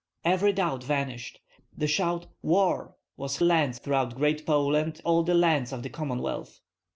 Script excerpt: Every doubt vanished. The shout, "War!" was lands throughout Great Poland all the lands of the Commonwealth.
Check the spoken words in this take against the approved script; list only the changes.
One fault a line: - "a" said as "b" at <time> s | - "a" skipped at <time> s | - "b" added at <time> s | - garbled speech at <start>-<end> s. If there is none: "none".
none